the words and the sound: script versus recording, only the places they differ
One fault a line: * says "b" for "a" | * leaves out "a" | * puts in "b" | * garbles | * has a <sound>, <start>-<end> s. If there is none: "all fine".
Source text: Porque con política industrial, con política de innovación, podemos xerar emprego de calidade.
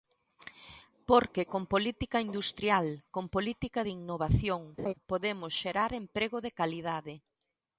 * has a laugh, 4.8-4.9 s